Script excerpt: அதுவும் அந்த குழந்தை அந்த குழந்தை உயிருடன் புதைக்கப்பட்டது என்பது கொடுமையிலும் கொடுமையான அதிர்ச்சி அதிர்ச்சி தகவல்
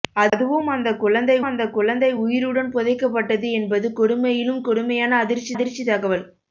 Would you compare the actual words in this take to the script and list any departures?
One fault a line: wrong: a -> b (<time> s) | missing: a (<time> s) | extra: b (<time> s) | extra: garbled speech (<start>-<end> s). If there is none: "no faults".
no faults